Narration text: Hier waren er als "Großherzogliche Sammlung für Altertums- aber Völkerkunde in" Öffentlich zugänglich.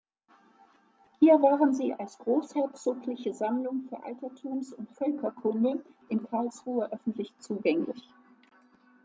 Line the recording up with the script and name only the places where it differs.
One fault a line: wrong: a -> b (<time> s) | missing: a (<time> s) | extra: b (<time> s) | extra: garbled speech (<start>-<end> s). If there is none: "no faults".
wrong: er -> sie (1.8 s)
wrong: aber -> und (4.7 s)
extra: Karlsruhe (6.2 s)